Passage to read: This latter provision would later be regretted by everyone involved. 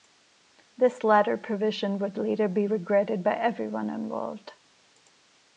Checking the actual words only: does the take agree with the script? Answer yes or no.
yes